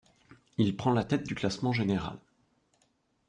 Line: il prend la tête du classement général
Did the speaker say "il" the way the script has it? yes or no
yes